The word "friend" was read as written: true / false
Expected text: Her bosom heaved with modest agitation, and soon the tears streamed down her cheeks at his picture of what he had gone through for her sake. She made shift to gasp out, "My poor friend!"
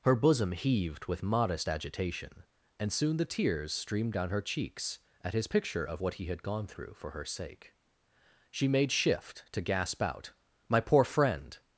true